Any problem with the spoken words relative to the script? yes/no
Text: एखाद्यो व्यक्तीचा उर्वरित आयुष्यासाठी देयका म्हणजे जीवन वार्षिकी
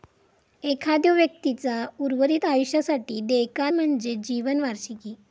no